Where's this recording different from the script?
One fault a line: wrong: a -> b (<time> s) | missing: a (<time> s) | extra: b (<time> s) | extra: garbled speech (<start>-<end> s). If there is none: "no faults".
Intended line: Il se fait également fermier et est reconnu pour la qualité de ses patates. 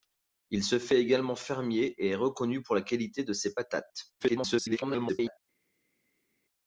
extra: garbled speech (4.2-5.4 s)